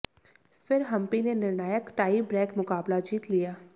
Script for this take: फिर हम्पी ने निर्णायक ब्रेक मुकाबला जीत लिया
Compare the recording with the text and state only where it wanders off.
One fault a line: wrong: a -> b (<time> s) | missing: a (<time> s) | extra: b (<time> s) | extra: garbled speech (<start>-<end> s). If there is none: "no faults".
extra: टाई (2.0 s)